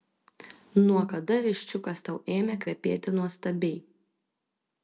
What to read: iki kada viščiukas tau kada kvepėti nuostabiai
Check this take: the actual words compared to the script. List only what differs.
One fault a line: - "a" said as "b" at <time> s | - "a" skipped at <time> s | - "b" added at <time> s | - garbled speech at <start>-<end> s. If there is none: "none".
- "iki" said as "nuo" at 0.8 s
- "kada" said as "ėmė" at 2.3 s